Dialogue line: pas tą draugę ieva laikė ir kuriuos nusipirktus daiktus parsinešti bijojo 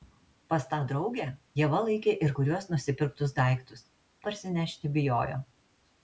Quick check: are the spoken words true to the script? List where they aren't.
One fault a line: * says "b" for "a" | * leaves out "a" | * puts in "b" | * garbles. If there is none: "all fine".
all fine